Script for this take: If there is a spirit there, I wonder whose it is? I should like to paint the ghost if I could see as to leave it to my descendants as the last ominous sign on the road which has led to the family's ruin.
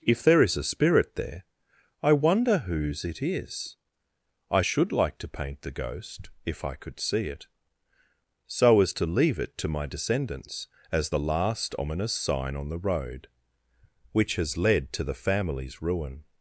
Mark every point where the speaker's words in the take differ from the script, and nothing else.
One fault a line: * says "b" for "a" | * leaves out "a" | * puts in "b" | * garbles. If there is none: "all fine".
* puts in "it so"